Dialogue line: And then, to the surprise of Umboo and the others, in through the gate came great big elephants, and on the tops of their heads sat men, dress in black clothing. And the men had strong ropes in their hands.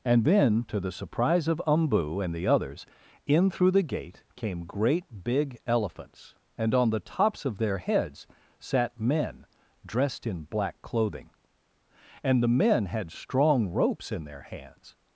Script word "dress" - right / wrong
wrong